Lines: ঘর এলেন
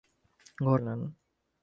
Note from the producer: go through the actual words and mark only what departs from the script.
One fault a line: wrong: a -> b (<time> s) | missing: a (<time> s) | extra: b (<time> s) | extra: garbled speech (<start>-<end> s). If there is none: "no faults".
no faults